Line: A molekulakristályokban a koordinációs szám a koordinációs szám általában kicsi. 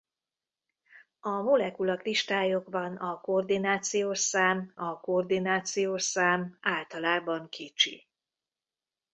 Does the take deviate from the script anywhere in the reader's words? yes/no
no